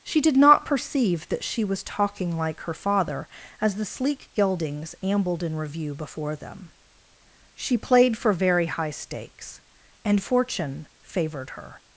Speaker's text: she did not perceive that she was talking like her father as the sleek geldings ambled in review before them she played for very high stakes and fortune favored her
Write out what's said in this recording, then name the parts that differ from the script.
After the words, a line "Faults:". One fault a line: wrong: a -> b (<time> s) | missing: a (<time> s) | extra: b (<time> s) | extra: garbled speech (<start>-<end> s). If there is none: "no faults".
she did not perceive that she was talking like her father as the sleek geldings ambled in review before them she played for very high stakes and fortune favored her
Faults:
no faults